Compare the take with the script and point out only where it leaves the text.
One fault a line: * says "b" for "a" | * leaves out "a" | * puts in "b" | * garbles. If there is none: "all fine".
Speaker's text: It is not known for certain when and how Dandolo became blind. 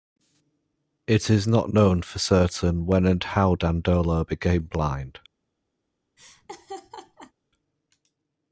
all fine